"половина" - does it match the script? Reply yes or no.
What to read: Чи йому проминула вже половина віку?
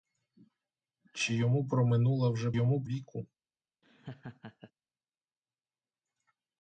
no